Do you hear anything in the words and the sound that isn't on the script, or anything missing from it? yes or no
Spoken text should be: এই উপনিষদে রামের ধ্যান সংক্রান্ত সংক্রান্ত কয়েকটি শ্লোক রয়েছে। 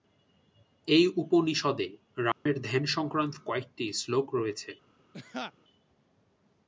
yes